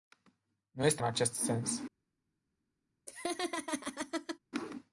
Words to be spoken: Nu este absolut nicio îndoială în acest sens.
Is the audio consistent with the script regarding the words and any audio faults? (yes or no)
no